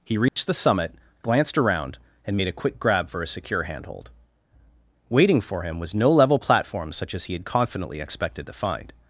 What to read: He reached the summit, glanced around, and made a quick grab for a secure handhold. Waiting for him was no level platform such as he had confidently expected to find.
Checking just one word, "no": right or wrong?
right